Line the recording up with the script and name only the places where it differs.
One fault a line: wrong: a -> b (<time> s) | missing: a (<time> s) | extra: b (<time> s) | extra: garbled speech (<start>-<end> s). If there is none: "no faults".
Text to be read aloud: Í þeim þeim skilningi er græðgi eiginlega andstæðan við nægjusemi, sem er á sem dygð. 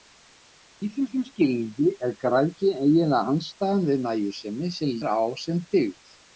no faults